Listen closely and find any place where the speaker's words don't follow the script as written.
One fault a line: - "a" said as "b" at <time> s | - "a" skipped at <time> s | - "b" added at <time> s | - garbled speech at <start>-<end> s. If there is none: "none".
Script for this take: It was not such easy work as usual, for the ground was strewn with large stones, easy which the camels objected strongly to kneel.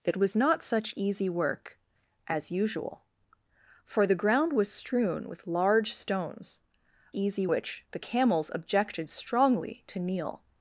none